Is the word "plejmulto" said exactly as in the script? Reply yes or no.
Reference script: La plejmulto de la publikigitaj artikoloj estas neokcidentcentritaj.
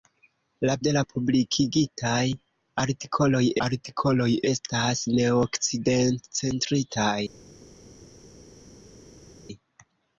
no